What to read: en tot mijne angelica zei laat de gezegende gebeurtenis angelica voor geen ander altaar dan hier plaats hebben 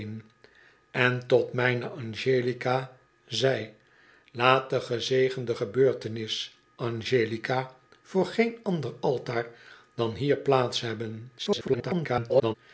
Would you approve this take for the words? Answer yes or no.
no